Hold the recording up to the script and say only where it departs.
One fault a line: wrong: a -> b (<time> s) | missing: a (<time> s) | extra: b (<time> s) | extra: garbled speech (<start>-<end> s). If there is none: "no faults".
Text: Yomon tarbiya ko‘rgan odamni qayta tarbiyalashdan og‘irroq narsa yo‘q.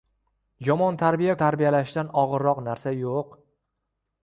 missing: ko‘rgan odamni qayta (1.4 s)